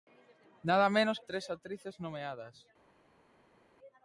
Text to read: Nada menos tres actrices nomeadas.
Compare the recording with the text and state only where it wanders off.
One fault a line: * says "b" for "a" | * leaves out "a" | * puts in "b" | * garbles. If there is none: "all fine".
all fine